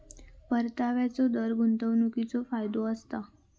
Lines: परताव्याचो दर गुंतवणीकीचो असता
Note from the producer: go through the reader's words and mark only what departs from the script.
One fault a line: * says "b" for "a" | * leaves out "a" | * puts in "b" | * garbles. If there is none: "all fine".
* puts in "फायदो"